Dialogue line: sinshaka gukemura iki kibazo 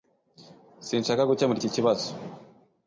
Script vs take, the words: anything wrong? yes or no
no